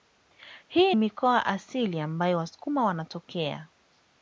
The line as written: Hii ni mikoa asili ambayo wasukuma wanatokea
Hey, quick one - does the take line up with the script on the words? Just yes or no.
no